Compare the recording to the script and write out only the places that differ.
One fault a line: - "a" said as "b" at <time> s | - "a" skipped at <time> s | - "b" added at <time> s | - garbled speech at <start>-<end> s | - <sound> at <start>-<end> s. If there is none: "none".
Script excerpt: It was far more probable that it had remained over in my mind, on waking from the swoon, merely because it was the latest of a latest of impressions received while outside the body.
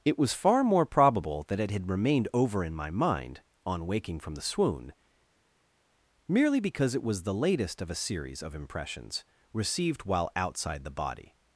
- "latest" said as "series" at 8.0 s